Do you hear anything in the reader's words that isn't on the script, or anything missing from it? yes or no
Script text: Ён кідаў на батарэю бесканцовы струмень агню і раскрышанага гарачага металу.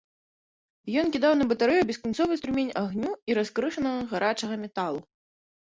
no